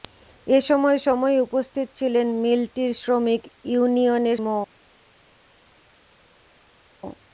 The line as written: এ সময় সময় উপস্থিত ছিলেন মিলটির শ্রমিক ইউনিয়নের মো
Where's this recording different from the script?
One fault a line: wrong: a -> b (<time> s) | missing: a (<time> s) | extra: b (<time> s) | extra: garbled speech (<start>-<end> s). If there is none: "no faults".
no faults